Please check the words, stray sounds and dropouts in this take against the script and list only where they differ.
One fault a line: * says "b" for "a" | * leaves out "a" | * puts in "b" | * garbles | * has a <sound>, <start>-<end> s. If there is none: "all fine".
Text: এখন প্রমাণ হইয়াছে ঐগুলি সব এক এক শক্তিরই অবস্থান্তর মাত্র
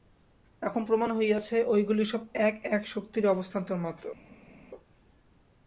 all fine